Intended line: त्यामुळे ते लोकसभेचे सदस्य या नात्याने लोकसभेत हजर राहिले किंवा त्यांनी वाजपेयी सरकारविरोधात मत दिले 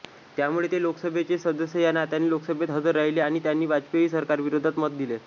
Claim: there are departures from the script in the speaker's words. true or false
true